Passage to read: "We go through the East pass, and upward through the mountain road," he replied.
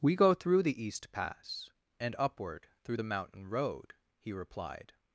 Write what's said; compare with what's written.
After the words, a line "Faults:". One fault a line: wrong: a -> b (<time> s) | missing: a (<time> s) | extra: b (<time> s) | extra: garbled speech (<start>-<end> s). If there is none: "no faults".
"We go through the East pass, and upward through the mountain road," he replied.
Faults:
no faults